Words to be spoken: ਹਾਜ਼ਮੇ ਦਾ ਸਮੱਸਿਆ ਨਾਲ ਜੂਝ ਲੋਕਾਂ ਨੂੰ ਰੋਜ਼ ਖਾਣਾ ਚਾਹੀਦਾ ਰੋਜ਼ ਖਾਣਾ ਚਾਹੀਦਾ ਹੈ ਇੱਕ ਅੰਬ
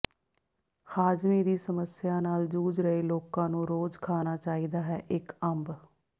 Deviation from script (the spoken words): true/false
true